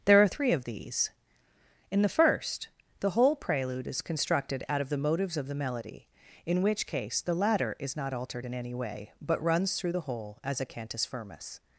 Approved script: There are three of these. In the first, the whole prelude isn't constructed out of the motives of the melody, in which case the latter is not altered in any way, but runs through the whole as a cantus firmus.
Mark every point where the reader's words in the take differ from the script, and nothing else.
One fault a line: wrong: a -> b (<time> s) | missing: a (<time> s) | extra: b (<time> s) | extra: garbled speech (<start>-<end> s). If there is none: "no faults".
wrong: isn't -> is (3.9 s)